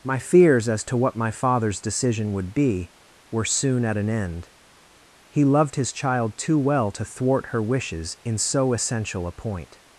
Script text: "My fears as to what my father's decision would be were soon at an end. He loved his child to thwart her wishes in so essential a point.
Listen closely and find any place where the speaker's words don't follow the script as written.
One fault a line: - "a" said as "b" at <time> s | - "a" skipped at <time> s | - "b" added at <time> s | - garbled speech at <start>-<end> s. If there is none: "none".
- "too well" added at 6.4 s